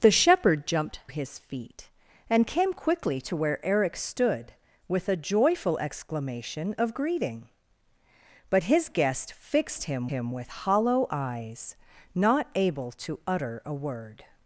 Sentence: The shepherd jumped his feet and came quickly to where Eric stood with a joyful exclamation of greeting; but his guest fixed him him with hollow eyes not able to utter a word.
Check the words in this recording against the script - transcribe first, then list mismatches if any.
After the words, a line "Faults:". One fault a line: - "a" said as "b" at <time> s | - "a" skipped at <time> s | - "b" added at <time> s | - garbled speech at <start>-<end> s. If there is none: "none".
The shepherd jumped his feet and came quickly to where Eric stood with a joyful exclamation of greeting; but his guest fixed him him with hollow eyes not able to utter a word.
Faults:
none